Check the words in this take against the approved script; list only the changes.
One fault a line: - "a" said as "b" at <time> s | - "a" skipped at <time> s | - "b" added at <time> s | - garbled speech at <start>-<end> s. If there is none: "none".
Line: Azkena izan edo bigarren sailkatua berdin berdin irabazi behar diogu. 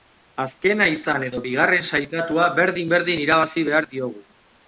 none